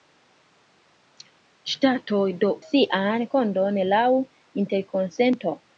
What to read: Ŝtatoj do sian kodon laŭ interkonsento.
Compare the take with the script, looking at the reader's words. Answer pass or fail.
pass